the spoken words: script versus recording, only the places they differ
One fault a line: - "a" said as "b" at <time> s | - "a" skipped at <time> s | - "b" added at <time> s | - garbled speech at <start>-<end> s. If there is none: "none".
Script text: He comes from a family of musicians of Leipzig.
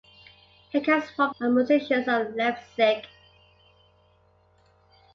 - "a family" skipped at 1.4 s